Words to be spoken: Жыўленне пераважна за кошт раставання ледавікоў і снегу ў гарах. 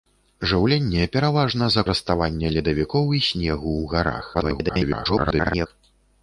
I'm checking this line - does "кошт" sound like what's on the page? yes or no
no